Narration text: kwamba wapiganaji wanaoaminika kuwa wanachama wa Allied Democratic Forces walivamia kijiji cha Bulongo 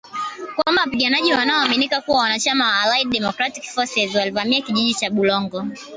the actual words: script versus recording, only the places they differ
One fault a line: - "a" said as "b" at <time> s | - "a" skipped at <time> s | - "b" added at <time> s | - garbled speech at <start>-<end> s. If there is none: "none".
none